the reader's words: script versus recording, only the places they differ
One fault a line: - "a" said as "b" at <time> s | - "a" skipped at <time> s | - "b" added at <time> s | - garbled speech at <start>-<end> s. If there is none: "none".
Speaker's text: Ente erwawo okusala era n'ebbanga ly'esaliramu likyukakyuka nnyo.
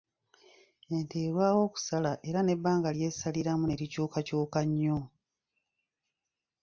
- "ne" added at 3.7 s